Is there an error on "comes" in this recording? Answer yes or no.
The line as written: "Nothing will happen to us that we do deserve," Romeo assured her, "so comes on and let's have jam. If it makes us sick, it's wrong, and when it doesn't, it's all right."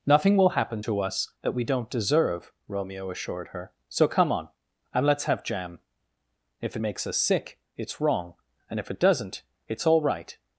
yes